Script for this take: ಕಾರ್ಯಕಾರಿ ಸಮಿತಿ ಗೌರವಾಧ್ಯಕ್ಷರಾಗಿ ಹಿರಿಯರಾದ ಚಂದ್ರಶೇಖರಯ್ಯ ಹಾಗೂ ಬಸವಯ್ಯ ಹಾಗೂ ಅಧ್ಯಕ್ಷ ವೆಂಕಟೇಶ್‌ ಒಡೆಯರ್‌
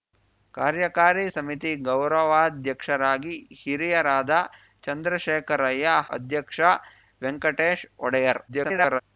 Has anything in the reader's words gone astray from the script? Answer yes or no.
yes